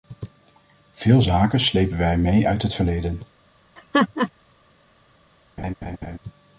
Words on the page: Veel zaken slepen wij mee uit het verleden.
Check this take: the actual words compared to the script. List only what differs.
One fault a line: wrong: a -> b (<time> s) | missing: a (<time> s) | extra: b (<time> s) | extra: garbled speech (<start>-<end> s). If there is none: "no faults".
no faults